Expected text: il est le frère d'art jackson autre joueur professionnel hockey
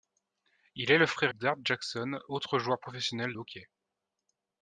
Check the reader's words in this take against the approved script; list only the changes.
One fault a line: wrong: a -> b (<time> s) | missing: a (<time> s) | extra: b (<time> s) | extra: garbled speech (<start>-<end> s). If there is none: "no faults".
no faults